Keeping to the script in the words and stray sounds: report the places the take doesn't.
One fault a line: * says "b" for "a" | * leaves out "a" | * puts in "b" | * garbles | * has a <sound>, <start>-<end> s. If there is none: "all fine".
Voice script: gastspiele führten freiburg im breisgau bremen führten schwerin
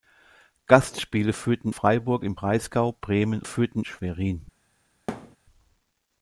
* has a thud, 5.1-5.4 s